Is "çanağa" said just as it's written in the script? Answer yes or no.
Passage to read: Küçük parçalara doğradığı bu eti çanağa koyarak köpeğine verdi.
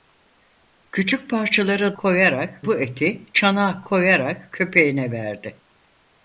yes